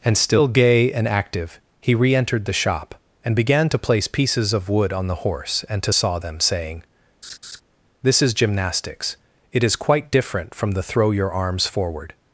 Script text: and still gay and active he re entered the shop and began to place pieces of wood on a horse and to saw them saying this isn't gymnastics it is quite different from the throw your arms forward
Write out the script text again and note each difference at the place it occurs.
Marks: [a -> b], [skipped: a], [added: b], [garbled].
and still gay and active he re entered the shop and began to place pieces of wood on [a -> the] horse and to saw them saying this [isn't -> is] gymnastics it is quite different from the throw your arms forward